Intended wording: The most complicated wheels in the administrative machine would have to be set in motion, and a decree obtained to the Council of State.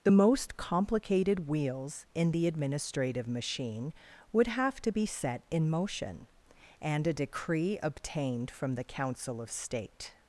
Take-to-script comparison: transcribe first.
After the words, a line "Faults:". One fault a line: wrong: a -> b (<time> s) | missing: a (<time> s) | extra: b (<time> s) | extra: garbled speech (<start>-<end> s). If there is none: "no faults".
The most complicated wheels in the administrative machine would have to be set in motion, and a decree obtained from the Council of State.
Faults:
wrong: to -> from (8.5 s)